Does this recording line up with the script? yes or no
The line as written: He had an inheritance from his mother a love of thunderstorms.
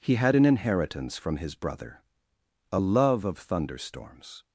no